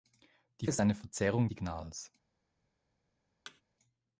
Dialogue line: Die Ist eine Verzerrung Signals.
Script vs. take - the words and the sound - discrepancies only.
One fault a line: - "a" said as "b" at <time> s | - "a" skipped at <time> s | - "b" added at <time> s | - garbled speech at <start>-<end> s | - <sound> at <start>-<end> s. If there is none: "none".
- thud at 3.5-3.6 s